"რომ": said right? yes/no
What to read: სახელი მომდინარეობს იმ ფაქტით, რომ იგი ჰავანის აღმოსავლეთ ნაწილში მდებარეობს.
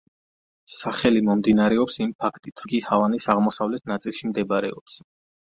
no